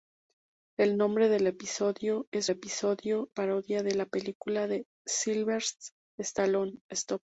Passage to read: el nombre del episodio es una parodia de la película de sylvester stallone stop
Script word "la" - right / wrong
right